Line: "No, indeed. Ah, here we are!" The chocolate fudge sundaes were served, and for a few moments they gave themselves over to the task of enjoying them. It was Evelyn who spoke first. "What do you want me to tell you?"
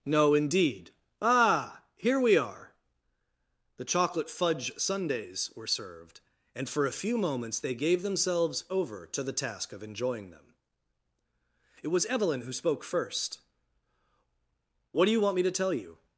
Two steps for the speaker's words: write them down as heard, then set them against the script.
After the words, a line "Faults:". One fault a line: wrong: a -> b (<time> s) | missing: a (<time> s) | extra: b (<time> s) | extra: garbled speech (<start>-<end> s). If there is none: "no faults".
"No, indeed. Ah, here we are!" The chocolate fudge sundaes were served, and for a few moments they gave themselves over to the task of enjoying them. It was Evelyn who spoke first. "What do you want me to tell you?"
Faults:
no faults